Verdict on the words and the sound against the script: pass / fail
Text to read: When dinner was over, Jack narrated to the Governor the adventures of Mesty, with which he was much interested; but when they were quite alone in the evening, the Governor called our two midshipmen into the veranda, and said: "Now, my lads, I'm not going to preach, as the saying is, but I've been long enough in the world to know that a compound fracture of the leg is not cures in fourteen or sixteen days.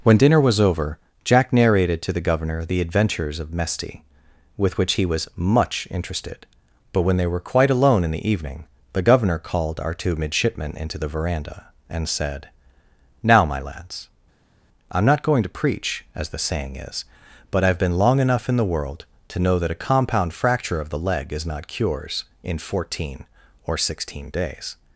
pass